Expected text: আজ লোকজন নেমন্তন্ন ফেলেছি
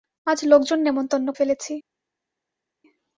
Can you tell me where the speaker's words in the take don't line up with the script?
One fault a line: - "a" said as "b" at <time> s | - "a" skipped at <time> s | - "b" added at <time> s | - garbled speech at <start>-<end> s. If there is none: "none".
none